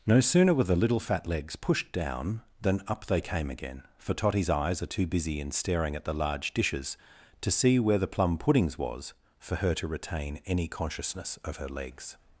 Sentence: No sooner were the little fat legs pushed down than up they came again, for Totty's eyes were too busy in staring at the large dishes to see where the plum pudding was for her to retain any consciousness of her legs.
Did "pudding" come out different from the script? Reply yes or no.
yes